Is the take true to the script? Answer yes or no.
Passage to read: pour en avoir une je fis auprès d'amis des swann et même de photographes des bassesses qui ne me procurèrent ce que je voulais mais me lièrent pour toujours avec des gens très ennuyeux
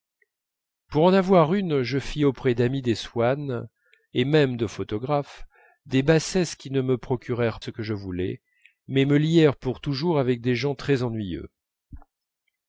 yes